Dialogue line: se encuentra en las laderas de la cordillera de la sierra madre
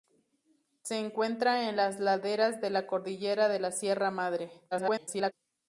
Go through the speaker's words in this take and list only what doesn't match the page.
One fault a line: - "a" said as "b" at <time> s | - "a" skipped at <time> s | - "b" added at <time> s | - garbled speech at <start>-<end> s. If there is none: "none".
- garbled speech at 4.7-5.3 s